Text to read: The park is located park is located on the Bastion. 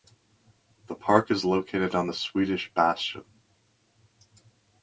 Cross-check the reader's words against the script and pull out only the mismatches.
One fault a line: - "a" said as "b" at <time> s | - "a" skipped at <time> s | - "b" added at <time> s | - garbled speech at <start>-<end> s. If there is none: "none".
- "park is located" skipped at 1.9 s
- "Swedish" added at 2.1 s